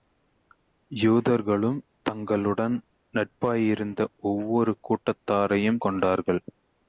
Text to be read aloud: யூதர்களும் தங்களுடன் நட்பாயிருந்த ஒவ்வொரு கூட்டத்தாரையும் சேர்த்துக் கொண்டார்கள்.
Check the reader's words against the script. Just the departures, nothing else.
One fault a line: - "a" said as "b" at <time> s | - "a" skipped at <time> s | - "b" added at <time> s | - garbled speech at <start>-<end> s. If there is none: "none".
- "சேர்த்துக்" skipped at 5.8 s